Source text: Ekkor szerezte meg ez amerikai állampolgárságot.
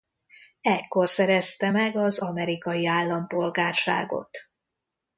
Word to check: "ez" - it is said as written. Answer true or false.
false